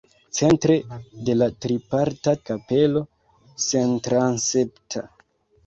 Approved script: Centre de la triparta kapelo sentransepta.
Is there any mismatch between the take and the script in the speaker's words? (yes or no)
no